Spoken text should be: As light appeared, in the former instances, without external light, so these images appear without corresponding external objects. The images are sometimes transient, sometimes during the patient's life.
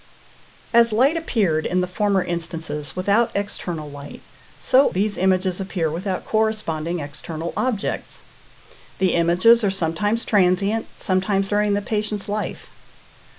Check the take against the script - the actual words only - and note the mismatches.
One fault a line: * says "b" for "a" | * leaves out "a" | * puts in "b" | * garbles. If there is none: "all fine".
all fine